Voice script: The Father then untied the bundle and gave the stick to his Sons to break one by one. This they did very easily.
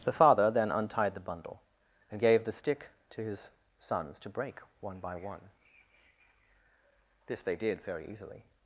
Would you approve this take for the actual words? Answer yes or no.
yes